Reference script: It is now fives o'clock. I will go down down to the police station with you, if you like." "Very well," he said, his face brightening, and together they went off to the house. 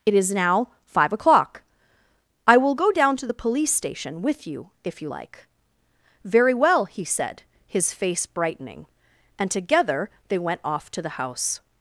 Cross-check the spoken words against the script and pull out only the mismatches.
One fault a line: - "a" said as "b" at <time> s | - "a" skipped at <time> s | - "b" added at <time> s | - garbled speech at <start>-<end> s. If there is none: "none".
- "fives" said as "five" at 0.9 s
- "down" skipped at 3.2 s